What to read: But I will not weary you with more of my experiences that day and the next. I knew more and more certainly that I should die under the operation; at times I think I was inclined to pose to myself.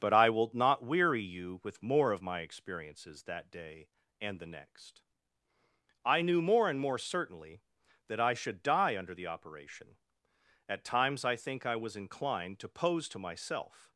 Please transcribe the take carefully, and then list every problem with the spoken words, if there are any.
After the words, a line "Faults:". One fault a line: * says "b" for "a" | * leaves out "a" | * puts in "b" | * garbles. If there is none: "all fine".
But I will not weary you with more of my experiences that day and the next. I knew more and more certainly that I should die under the operation; at times I think I was inclined to pose to myself.
Faults:
all fine